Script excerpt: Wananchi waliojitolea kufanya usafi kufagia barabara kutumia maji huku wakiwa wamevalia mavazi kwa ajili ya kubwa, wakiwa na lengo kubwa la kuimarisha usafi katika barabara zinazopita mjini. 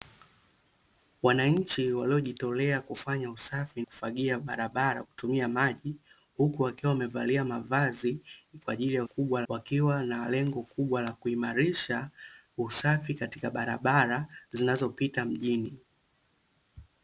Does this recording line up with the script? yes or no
yes